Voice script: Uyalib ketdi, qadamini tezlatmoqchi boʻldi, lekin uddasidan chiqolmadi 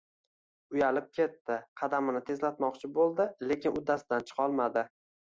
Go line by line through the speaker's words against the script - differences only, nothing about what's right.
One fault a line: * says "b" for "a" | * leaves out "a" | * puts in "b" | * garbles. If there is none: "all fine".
all fine